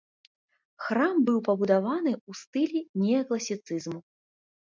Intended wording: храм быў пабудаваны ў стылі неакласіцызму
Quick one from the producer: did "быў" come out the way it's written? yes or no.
yes